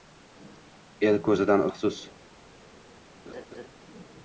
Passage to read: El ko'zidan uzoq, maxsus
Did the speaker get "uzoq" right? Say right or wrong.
wrong